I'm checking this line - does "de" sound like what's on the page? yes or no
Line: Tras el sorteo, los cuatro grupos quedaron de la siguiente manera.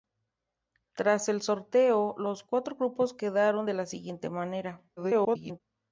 yes